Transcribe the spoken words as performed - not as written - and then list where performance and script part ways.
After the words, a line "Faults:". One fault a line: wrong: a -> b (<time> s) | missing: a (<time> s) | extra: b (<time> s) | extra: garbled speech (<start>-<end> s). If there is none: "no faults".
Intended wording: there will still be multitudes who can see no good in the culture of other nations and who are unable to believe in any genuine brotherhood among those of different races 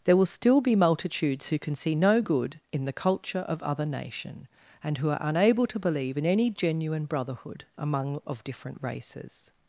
there will still be multitudes who can see no good in the culture of other nation and who are unable to believe in any genuine brotherhood among of different races
Faults:
wrong: nations -> nation (3.9 s)
missing: those (8.2 s)